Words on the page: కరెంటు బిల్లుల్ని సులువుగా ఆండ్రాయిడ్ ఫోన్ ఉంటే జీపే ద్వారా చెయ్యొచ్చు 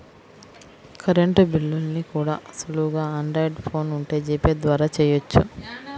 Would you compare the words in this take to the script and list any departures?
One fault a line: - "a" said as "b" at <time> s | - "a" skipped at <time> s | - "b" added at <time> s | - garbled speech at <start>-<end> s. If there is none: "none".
- "కూడా" added at 2.1 s